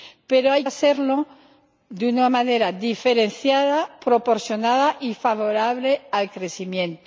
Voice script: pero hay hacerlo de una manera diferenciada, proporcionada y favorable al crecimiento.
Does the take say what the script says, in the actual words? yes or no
yes